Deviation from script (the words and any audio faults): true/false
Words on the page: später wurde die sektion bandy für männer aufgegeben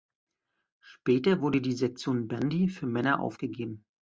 false